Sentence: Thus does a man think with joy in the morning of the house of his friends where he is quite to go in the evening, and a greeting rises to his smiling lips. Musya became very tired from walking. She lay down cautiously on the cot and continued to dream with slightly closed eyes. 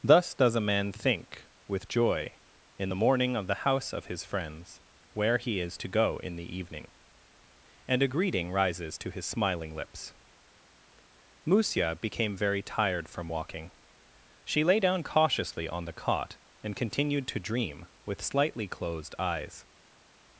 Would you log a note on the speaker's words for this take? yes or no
yes